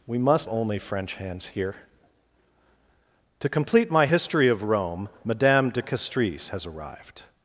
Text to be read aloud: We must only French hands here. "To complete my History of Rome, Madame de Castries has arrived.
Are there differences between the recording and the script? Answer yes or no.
no